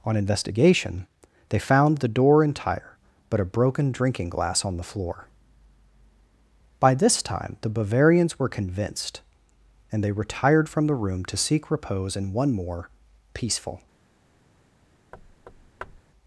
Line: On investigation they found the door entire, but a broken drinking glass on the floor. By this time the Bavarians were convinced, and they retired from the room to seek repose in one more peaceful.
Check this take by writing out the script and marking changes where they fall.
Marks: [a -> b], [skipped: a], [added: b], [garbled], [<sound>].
On investigation they found the door entire, but a broken drinking glass on the floor. By this time the Bavarians were convinced, and they retired from the room to seek repose in one more peaceful. [thud]